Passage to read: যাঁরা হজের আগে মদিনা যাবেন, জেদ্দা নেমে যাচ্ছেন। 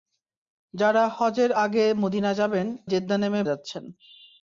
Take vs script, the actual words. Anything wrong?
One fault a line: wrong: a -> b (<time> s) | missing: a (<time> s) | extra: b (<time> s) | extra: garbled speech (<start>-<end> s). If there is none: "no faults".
no faults